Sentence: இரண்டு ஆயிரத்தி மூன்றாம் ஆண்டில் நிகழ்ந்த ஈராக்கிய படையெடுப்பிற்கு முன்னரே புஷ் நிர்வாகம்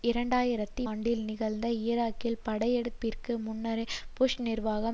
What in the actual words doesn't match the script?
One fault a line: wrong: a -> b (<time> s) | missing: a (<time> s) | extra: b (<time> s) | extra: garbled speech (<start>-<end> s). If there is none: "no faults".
missing: மூன்றாம் (0.8 s)